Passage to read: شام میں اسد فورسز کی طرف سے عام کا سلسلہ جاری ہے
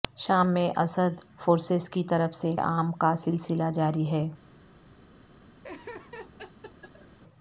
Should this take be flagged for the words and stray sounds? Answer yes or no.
yes